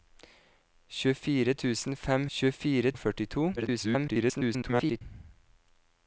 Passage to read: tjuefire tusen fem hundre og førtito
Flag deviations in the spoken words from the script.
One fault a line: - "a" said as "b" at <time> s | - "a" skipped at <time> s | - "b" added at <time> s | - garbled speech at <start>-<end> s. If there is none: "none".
- "hundre" said as "tjuefire" at 2.4 s
- garbled speech at 3.6-5.0 s